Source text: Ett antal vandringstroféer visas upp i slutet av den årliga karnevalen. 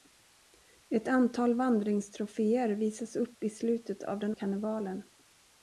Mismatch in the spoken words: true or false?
true